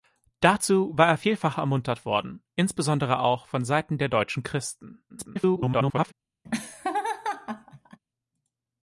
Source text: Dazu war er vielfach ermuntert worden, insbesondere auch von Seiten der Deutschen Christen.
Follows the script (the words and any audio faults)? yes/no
no